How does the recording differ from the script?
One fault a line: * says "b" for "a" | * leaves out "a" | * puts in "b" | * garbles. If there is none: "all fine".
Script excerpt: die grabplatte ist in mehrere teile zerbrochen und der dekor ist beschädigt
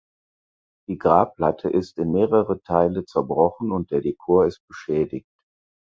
all fine